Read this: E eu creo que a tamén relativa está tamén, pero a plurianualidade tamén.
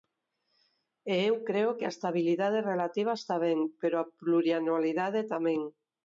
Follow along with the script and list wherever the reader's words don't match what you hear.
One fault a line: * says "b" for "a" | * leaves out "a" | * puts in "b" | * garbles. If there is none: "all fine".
* says "estabilidade" for "tamén"
* says "ben" for "tamén"